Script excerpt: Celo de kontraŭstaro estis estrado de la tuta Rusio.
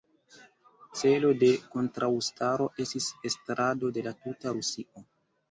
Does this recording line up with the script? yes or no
yes